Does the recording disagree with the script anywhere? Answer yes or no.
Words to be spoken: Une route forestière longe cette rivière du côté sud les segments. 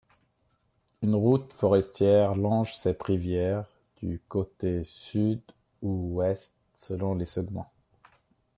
yes